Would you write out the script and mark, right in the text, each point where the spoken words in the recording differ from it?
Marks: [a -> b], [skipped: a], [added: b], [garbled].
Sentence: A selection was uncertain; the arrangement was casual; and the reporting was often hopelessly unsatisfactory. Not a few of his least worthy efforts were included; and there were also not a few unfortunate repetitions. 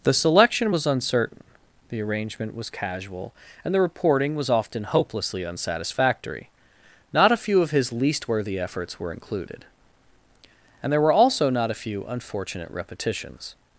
[A -> The] selection was uncertain; the arrangement was casual; and the reporting was often hopelessly unsatisfactory. Not a few of his least worthy efforts were included; and there were also not a few unfortunate repetitions.